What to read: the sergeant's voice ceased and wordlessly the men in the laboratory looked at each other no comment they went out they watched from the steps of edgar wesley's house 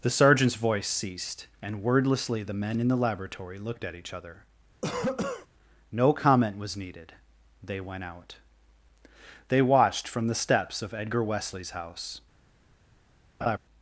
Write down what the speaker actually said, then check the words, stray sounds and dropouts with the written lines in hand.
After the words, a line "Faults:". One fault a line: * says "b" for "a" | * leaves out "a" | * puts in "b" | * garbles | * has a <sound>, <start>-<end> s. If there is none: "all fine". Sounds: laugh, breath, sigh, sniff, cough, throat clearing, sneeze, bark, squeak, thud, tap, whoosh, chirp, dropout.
the sergeant's voice ceased and wordlessly the men in the laboratory looked at each other no comment was needed they went out they watched from the steps of edgar wesley's house
Faults:
* has a cough, 4.8-5.5 s
* puts in "was needed"
* has a laugh, 13.4-13.6 s